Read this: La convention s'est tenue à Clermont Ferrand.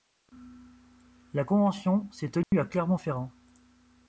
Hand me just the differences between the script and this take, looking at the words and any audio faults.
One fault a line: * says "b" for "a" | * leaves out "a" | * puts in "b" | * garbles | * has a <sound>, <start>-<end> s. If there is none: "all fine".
* has a dropout, 2.4-2.5 s